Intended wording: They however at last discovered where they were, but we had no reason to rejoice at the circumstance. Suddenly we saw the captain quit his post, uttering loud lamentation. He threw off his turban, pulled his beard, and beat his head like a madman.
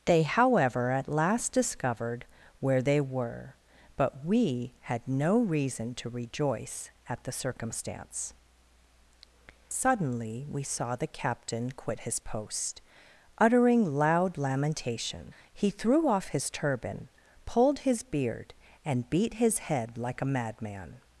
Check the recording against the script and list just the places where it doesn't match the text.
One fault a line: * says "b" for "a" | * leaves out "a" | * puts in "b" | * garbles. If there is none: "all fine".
all fine